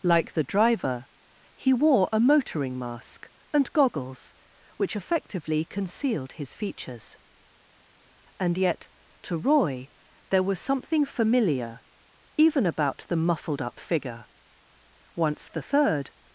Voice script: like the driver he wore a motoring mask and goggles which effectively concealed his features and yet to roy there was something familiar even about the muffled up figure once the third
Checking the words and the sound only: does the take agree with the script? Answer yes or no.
yes